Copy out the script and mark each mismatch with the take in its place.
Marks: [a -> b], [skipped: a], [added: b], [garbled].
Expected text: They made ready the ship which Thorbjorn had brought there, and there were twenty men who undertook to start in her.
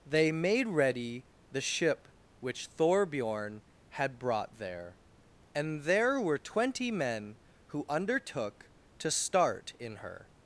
They made ready the ship which Thorbjorn had brought there, and there were twenty men who undertook to start in her.